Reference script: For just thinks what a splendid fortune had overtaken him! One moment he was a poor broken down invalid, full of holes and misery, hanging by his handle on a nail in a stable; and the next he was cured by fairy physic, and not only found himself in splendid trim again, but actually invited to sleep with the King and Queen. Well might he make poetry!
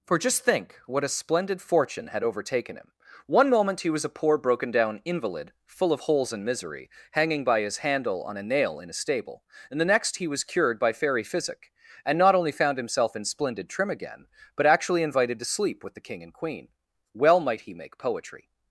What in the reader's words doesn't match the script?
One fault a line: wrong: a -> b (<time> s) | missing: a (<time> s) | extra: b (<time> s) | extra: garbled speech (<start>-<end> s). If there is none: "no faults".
wrong: thinks -> think (0.4 s)